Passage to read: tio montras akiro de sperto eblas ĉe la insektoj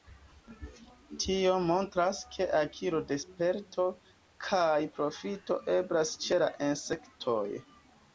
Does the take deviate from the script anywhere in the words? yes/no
yes